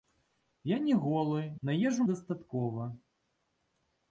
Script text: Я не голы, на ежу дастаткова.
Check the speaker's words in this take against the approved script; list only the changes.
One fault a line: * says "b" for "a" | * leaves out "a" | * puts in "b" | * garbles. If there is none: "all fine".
all fine